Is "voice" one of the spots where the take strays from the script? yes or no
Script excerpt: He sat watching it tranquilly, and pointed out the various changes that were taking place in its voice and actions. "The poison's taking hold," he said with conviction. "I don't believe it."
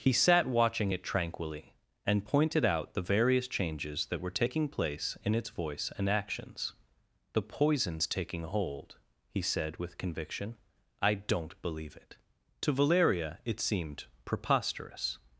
no